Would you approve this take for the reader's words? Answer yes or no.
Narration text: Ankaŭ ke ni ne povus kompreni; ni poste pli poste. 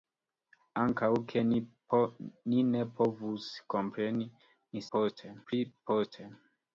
yes